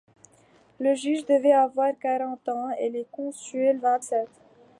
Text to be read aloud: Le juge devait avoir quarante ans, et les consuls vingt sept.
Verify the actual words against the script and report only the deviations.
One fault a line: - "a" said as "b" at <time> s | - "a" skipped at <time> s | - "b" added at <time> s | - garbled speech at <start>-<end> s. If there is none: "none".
none